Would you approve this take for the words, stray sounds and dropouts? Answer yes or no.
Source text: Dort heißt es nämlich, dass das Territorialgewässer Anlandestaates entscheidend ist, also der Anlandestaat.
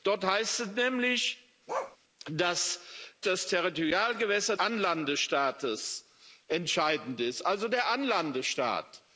no